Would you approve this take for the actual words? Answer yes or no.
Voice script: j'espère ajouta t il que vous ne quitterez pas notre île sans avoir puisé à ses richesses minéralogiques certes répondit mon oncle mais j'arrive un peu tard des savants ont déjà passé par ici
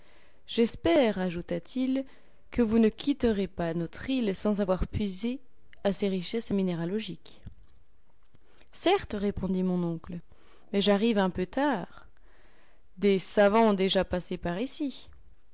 yes